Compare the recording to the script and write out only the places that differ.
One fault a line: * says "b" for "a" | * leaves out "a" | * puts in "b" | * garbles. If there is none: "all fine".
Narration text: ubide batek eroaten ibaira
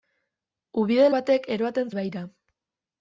all fine